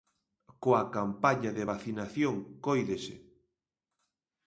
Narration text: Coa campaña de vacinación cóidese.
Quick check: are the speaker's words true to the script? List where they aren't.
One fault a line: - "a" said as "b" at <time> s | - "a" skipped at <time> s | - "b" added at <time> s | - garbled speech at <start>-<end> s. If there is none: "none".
none